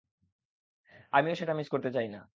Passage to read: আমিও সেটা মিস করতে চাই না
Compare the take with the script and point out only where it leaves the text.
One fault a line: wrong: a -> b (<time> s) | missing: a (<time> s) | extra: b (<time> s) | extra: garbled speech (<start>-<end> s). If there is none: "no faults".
no faults